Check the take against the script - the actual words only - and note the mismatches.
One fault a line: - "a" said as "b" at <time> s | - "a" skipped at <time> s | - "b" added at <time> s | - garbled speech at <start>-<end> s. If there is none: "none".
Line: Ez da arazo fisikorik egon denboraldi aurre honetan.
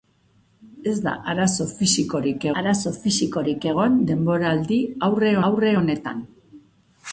- "arazo fisikorik" added at 2.6 s
- "aurre" added at 5.5 s